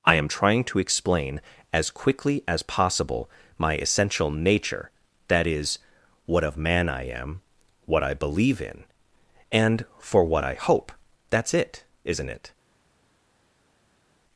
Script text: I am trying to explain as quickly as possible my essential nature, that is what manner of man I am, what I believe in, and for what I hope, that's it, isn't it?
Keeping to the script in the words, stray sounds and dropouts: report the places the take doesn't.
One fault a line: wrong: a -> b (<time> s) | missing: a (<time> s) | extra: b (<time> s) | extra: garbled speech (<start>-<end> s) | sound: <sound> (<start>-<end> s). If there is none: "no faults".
missing: manner (6.4 s)